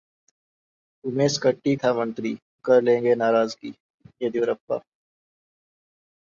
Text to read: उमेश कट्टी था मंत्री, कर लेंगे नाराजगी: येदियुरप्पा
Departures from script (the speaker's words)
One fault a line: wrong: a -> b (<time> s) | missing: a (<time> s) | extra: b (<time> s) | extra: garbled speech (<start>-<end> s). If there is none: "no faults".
no faults